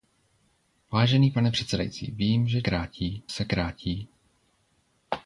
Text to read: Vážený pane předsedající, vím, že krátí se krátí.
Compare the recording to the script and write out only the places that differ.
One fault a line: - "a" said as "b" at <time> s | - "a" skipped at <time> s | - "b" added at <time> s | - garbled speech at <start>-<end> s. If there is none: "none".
none